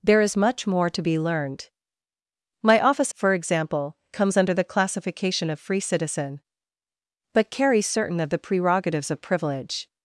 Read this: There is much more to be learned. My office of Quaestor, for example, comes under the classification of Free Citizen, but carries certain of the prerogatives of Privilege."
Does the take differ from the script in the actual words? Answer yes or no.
yes